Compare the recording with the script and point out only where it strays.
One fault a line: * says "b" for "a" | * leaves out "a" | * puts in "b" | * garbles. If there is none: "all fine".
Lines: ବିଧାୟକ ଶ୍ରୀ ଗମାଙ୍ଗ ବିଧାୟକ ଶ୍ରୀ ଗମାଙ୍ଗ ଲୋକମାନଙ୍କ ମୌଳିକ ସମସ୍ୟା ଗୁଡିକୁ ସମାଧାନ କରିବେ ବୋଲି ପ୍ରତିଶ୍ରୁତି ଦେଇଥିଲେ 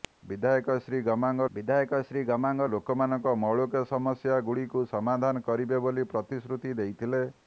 all fine